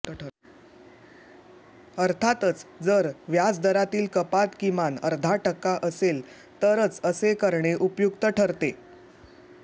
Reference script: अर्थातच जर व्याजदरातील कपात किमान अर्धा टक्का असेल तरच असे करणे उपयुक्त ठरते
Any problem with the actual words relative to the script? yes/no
no